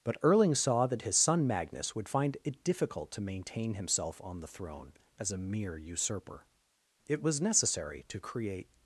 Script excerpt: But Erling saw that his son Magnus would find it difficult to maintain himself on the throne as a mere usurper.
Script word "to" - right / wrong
right